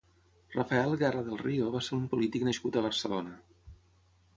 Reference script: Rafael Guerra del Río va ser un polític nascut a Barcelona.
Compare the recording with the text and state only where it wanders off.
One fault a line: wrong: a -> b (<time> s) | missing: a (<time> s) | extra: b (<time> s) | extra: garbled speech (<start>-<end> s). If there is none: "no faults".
no faults